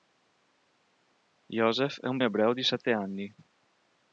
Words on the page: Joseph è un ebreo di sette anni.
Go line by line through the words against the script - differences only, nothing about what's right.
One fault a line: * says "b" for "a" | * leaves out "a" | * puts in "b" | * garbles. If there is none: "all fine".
all fine